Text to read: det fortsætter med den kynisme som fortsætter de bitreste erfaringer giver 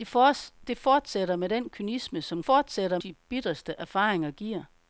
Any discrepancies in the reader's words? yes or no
no